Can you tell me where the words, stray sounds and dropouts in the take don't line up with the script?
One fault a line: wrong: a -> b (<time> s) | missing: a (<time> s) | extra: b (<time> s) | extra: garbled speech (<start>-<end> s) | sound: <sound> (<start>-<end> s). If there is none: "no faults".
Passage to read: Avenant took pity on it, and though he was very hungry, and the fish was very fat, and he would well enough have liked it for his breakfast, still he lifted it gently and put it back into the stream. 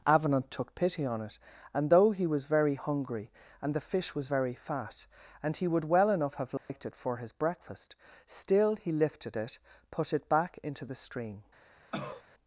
sound: dropout (6.6-6.7 s)
missing: gently and (9.6 s)
sound: cough (11.9-12.2 s)